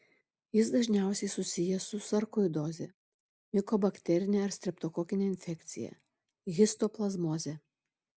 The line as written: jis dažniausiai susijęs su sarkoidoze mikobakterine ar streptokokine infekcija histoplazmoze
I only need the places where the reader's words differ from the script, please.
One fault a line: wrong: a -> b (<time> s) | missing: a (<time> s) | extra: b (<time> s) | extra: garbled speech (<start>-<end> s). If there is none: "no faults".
no faults